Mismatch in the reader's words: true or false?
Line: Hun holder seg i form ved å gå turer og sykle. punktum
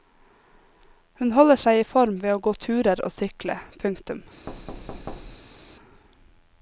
false